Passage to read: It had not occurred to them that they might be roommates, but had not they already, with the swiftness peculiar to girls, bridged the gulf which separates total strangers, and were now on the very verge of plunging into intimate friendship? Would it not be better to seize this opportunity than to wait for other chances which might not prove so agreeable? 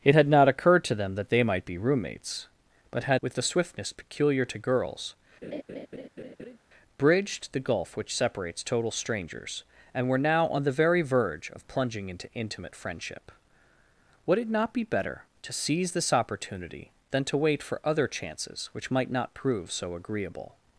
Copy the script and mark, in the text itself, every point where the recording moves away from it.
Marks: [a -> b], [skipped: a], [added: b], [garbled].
It had not occurred to them that they might be roommates, but had [skipped: not they already,] with the swiftness peculiar to girls, bridged the gulf which separates total strangers, and were now on the very verge of plunging into intimate friendship? Would it not be better to seize this opportunity than to wait for other chances which might not prove so agreeable?